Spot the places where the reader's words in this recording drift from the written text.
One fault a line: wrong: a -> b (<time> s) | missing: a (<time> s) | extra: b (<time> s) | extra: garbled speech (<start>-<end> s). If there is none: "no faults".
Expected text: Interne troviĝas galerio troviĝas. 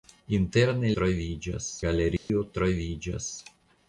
no faults